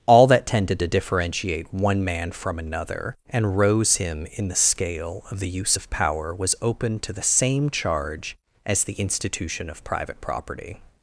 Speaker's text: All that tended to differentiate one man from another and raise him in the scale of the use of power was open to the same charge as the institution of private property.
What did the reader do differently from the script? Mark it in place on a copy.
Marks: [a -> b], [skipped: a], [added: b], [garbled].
All that tended to differentiate one man from another and [raise -> rose] him in the scale of the use of power was open to the same charge as the institution of private property.